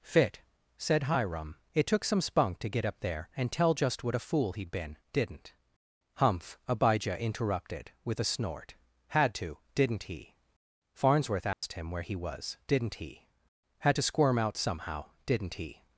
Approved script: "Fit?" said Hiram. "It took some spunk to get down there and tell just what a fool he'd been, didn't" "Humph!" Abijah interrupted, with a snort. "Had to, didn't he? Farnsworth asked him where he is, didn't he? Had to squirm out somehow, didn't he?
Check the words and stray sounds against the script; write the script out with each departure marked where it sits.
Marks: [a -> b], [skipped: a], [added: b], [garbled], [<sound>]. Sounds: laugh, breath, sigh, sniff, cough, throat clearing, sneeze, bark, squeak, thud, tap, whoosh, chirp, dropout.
"Fit?" said Hiram. "It took some spunk to get [down -> up] there and tell just what a fool he'd been, didn't" "Humph!" Abijah interrupted, with a snort. "Had to, didn't he? Farnsworth asked [dropout] him where he [is, -> was] didn't he? Had to squirm out somehow, didn't he?